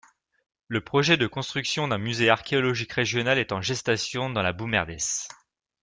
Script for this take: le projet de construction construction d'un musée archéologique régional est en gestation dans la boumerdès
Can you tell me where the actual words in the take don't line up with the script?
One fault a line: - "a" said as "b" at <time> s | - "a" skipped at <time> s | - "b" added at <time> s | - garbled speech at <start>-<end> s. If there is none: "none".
- "construction" skipped at 1.9 s